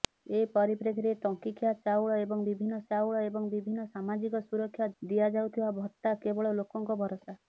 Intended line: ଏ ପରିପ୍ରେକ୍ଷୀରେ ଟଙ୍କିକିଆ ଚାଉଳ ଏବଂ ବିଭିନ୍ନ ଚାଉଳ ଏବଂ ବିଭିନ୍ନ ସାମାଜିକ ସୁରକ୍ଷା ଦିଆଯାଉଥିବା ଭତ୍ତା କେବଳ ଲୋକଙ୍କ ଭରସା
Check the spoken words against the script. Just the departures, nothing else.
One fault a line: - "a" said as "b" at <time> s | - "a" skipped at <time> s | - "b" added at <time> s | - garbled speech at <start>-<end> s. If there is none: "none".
none